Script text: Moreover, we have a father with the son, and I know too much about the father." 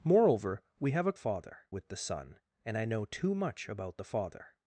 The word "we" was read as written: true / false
true